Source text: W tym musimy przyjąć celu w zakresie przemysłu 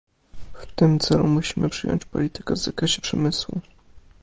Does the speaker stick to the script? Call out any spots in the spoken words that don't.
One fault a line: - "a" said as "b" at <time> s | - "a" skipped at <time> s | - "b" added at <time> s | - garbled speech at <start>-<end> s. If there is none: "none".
- "celu" added at 1.0 s
- "celu" said as "politykę" at 2.0 s